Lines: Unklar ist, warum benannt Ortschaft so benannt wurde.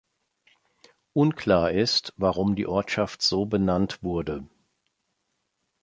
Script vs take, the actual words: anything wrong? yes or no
yes